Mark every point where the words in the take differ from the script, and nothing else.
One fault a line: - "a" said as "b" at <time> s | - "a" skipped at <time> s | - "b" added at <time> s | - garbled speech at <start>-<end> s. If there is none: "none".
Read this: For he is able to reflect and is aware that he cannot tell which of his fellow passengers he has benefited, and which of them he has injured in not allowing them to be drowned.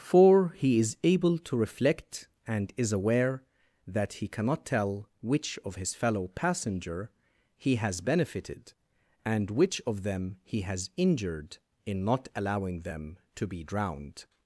- "passengers" said as "passenger" at 6.3 s